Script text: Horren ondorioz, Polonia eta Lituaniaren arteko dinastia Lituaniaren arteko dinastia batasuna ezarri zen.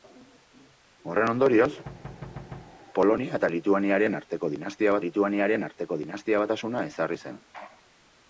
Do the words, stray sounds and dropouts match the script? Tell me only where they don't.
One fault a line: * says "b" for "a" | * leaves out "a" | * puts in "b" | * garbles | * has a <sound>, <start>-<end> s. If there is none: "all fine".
* has a thud, 1.8-2.8 s